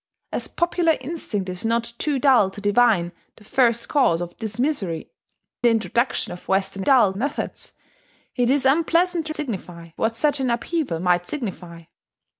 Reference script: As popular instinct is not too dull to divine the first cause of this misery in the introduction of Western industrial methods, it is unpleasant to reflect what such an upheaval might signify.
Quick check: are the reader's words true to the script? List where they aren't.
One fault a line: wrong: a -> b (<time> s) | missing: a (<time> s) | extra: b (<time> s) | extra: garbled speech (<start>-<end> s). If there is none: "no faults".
missing: in (5.1 s)
wrong: industrial -> dull (6.8 s)
wrong: reflect -> signify (9.3 s)